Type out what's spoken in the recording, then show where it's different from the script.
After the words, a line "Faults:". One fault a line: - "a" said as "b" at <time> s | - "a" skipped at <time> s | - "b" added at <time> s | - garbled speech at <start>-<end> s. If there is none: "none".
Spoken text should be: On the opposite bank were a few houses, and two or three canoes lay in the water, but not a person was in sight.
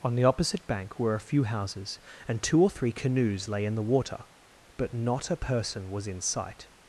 On the opposite bank were a few houses, and two or three canoes lay in the water, but not a person was in sight.
Faults:
none